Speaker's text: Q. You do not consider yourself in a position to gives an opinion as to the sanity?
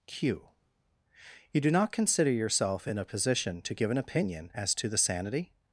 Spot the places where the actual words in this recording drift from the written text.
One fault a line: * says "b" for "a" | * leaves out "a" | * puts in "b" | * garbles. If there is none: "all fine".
* says "give" for "gives"